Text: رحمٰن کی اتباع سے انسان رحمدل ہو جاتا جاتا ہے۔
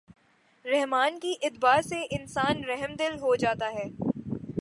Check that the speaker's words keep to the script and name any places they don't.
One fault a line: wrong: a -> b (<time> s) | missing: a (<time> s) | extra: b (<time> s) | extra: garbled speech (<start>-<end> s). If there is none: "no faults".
missing: جاتا (3.7 s)